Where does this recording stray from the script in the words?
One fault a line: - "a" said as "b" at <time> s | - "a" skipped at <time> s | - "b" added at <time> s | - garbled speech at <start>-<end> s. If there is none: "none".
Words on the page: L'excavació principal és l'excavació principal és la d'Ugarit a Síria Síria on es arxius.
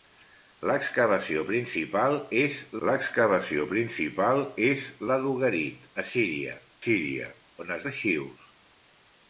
none